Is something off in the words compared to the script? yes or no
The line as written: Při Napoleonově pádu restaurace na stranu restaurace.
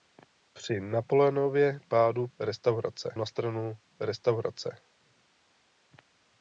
no